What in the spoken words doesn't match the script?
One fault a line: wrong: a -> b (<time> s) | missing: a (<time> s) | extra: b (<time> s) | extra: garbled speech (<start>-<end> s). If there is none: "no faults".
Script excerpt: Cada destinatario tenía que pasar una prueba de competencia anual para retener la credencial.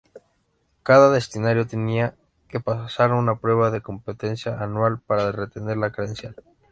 no faults